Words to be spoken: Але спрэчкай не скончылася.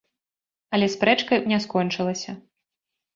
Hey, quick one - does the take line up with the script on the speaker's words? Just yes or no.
yes